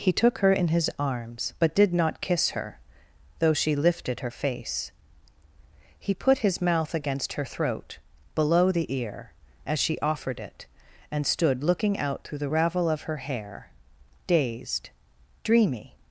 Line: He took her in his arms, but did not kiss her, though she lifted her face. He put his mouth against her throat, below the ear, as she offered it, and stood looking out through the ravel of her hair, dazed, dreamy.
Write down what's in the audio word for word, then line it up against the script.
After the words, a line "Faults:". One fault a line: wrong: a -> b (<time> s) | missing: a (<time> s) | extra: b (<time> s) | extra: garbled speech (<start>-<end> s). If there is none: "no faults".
He took her in his arms, but did not kiss her, though she lifted her face. He put his mouth against her throat, below the ear, as she offered it, and stood looking out through the ravel of her hair, dazed, dreamy.
Faults:
no faults